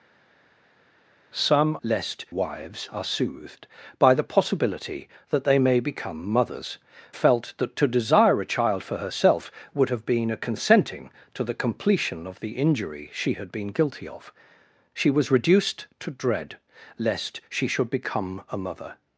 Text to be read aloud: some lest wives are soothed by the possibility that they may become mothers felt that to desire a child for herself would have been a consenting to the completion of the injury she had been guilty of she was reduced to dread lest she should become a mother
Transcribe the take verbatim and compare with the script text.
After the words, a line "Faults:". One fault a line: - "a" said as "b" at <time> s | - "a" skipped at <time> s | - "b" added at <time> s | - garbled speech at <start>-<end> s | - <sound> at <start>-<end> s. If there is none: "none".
some lest wives are soothed by the possibility that they may become mothers felt that to desire a child for herself would have been a consenting to the completion of the injury she had been guilty of she was reduced to dread lest she should become a mother
Faults:
none